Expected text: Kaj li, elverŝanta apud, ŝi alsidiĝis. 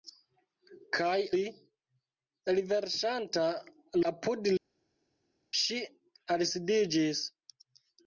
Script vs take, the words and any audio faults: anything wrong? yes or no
no